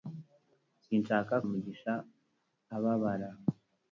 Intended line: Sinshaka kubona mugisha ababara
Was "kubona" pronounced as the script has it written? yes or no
no